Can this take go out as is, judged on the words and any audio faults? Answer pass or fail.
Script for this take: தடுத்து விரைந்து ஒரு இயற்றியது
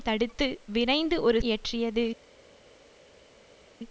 pass